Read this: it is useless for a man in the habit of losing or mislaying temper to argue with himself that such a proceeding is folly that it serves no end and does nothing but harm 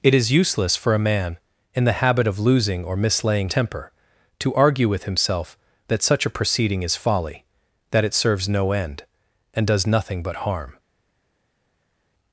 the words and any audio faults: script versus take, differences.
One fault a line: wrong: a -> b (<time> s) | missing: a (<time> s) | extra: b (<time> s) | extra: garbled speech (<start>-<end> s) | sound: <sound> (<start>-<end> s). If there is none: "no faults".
no faults